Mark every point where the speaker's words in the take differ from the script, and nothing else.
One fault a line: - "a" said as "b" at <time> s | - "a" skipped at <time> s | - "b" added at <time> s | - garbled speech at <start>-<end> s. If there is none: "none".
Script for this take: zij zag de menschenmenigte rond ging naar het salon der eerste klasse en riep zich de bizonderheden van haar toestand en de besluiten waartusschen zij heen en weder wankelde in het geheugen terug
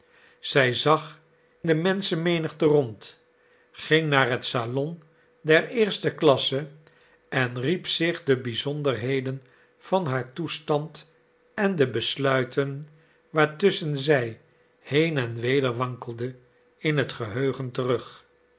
none